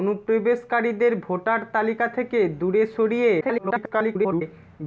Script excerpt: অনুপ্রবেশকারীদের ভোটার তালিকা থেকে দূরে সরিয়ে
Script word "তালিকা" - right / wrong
right